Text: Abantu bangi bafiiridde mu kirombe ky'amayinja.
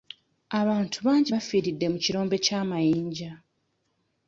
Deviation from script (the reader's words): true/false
false